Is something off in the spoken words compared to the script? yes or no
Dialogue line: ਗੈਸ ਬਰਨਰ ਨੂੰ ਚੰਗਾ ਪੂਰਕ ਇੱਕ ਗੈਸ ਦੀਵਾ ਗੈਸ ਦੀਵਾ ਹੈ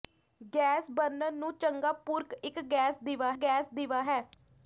no